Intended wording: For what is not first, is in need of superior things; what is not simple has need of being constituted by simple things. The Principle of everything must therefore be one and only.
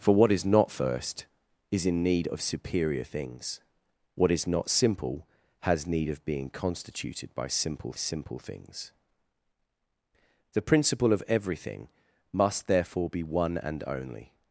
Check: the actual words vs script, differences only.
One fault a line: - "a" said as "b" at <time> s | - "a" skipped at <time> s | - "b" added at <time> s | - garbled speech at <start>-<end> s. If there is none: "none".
- "simple" added at 7.9 s